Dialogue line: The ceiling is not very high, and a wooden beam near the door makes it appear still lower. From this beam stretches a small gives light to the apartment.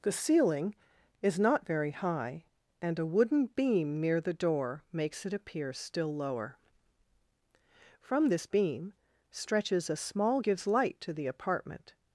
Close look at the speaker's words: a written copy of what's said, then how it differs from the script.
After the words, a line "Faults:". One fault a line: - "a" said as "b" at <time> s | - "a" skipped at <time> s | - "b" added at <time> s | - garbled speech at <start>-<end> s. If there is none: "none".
The ceiling is not very high, and a wooden beam near the door makes it appear still lower. From this beam stretches a small gives light to the apartment.
Faults:
none